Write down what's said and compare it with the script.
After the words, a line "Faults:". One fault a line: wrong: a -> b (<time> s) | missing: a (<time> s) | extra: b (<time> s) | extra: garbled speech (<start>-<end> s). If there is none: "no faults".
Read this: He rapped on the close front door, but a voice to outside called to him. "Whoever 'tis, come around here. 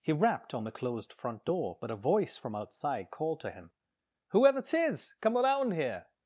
He rapped on the closed front door, but a voice from outside called to him. "Whoever 'tis, come around here.
Faults:
wrong: close -> closed (0.7 s)
wrong: to -> from (2.3 s)